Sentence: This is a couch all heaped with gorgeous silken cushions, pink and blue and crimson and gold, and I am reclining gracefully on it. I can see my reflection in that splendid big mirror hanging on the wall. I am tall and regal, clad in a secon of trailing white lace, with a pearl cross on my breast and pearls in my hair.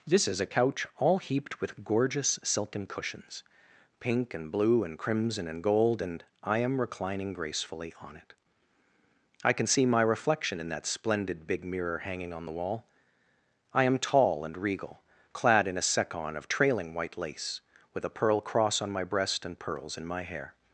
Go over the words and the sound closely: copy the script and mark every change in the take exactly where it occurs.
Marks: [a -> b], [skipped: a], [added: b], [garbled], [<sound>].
This is a couch all heaped with gorgeous silken cushions, pink and blue and crimson and gold, and I am reclining gracefully on it. I can see my reflection in that splendid big mirror hanging on the wall. I am tall and regal, clad in a secon of trailing white lace, with a pearl cross on my breast and pearls in my hair.